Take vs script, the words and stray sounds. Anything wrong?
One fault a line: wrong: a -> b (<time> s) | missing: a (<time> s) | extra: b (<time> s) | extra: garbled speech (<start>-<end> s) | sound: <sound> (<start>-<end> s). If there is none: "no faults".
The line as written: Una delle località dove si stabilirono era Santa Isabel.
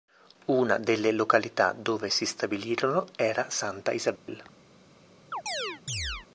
sound: dropout (4.2-4.3 s)
sound: chirp (5.3-6.3 s)